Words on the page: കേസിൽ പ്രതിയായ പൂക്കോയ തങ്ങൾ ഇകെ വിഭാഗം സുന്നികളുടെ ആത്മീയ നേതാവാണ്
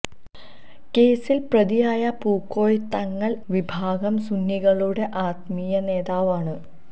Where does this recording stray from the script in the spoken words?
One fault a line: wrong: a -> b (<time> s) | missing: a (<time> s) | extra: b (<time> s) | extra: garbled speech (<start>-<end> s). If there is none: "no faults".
missing: ഇകെ (3.3 s)